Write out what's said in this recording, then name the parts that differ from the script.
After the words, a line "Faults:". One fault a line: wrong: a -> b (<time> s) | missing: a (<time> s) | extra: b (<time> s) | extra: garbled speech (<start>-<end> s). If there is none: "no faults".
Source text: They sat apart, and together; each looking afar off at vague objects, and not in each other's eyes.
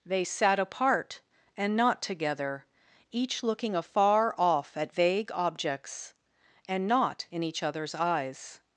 They sat apart, and not together; each looking afar off at vague objects, and not in each other's eyes.
Faults:
extra: not (1.8 s)